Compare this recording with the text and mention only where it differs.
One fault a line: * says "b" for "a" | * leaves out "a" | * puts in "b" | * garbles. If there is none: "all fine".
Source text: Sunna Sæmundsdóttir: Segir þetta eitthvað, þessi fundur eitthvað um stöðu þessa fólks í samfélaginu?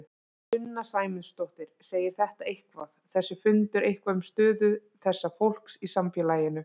all fine